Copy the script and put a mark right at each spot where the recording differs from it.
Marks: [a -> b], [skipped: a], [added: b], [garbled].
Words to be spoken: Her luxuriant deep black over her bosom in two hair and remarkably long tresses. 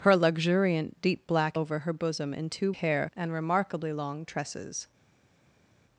Her luxuriant deep black over her bosom in two hair and remarkably long tresses.